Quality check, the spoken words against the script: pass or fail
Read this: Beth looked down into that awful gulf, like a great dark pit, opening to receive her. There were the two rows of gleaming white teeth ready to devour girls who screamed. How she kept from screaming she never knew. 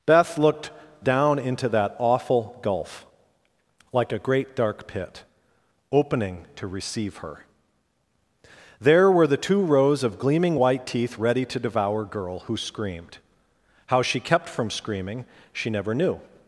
fail